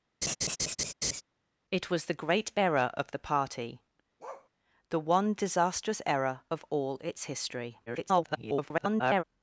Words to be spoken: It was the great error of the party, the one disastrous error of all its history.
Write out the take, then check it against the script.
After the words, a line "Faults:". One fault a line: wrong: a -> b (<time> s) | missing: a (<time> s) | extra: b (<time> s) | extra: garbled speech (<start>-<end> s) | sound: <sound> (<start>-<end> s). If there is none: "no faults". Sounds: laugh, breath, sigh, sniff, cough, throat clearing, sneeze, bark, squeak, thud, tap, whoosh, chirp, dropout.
It was the great error of the party, the one disastrous error of all its history. [garbled]
Faults:
sound: laugh (0.2-1.2 s)
sound: bark (4.2-4.5 s)
extra: garbled speech (7.9-9.2 s)